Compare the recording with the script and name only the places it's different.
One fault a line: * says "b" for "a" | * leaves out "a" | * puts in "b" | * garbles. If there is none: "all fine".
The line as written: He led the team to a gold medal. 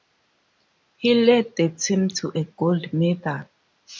all fine